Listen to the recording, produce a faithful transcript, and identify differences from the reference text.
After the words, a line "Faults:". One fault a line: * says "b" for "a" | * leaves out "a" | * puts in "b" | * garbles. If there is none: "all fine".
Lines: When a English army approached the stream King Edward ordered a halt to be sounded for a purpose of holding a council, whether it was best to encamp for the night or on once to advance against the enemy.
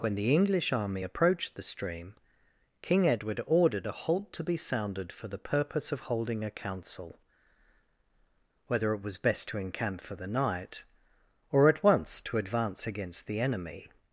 When the English army approached the stream King Edward ordered a halt to be sounded for the purpose of holding a council, whether it was best to encamp for the night or at once to advance against the enemy.
Faults:
* says "the" for "a"
* says "the" for "a"
* says "at" for "on"